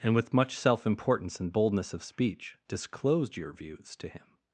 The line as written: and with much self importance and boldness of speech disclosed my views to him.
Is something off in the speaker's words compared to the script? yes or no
yes